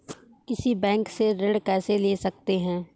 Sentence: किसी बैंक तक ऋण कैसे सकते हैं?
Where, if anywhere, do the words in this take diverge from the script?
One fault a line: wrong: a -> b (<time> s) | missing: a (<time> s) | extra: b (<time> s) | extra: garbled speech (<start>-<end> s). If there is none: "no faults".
wrong: तक -> से (1.1 s)
extra: ले (2.0 s)